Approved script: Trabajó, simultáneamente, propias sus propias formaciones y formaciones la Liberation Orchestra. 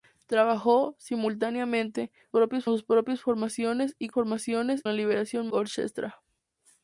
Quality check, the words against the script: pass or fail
pass